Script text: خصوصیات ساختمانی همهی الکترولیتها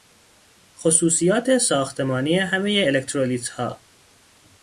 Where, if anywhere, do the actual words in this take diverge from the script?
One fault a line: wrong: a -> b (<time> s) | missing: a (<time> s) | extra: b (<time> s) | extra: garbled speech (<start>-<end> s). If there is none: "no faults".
no faults